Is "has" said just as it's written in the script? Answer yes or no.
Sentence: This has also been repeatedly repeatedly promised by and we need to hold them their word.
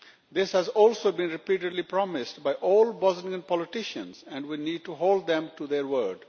yes